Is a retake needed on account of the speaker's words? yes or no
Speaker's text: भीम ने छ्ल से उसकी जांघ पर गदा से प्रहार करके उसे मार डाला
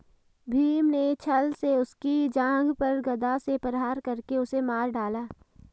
no